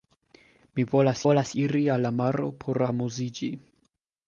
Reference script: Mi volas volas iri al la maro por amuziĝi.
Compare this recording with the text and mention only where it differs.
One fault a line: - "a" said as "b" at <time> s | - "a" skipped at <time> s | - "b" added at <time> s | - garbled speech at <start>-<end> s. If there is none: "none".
none